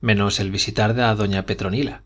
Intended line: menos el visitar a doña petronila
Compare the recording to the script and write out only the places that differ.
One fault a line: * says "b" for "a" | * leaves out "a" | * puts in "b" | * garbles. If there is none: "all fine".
all fine